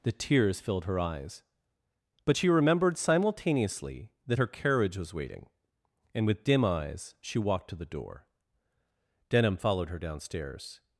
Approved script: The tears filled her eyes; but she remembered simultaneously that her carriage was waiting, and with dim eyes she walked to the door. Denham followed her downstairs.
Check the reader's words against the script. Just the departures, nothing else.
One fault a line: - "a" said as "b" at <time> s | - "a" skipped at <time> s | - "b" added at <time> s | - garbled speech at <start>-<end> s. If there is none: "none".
none